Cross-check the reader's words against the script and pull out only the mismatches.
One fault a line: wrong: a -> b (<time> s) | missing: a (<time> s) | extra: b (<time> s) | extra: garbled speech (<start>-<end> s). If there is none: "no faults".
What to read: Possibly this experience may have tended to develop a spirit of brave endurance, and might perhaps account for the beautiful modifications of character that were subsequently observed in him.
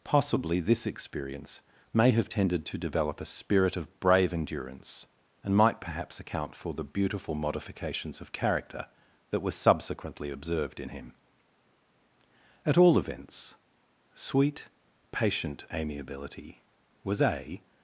extra: At all events sweet patient amiability was a (12.7 s)